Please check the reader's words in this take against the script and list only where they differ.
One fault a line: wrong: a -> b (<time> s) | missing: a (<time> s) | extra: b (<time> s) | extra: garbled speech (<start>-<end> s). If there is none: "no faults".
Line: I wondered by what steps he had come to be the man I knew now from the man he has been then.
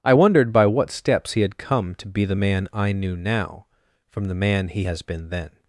no faults